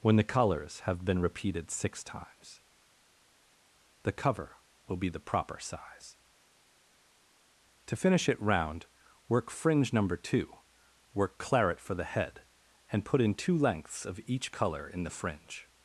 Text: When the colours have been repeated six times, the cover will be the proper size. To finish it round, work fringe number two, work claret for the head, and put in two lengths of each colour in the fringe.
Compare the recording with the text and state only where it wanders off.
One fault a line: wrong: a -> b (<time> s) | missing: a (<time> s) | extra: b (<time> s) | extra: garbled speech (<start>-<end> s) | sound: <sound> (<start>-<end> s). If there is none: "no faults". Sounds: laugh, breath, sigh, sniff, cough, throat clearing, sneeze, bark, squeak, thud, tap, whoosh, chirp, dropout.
no faults